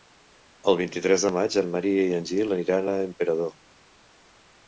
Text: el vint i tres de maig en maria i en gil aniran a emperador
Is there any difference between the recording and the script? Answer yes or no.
no